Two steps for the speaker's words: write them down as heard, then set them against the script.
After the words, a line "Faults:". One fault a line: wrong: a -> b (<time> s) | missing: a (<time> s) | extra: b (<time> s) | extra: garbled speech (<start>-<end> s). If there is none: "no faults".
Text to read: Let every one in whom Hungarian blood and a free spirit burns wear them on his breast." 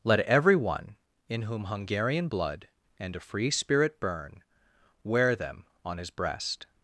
Let every one in whom Hungarian blood and a free spirit burn wear them on his breast."
Faults:
wrong: burns -> burn (4.0 s)